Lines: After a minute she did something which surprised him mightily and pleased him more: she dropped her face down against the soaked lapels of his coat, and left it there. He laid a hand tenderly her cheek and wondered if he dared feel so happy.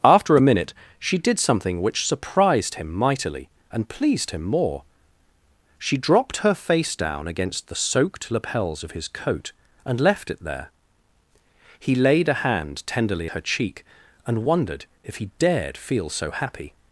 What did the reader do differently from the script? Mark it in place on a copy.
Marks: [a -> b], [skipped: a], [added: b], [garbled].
After a minute she did something which surprised him mightily and pleased him more: she dropped her face down against the soaked lapels of his coat, and left it there. He laid a hand tenderly her cheek and wondered if he dared feel so happy.